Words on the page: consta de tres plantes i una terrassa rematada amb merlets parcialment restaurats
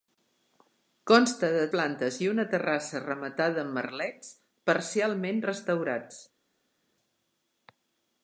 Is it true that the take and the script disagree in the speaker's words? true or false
true